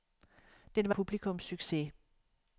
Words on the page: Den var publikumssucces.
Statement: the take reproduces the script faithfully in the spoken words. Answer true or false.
true